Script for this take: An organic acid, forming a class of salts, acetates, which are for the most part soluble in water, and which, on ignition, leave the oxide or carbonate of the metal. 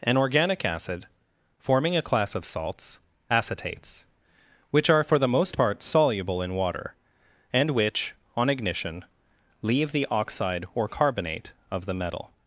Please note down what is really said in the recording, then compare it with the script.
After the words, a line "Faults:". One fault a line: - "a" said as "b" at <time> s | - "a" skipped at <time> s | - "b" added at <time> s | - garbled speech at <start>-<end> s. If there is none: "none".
An organic acid, forming a class of salts, acetates, which are for the most part soluble in water, and which, on ignition, leave the oxide or carbonate of the metal.
Faults:
none